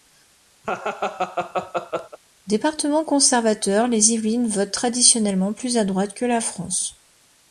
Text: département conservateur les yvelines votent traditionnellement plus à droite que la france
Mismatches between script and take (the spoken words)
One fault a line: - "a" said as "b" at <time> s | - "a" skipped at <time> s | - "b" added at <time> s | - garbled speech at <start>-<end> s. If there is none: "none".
none